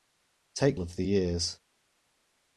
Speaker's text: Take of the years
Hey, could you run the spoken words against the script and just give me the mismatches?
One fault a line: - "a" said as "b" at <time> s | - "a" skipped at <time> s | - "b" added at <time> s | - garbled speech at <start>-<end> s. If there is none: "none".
none